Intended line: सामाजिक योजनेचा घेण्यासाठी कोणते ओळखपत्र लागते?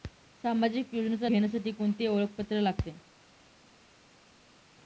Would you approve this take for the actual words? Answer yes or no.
yes